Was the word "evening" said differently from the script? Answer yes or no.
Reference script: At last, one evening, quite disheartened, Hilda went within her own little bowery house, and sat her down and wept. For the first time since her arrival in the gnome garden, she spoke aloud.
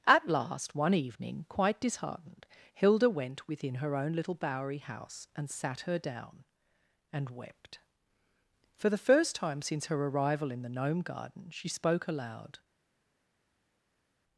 no